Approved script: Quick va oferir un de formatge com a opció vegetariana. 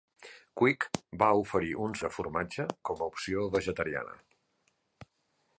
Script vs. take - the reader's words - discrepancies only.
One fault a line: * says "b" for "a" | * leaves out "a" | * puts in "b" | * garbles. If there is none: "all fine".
all fine